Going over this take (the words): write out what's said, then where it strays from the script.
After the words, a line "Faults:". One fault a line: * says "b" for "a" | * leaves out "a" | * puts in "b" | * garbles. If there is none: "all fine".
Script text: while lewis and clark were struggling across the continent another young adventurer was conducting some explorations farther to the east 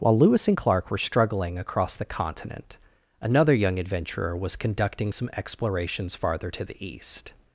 while lewis and clark were struggling across the continent another young adventurer was conducting some explorations farther to the east
Faults:
all fine